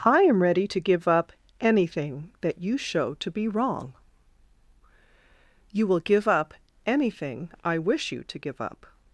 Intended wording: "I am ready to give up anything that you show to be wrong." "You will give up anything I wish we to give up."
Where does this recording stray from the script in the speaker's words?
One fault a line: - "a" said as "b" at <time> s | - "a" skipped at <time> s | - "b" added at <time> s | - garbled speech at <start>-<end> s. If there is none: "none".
- "we" said as "you" at 8.1 s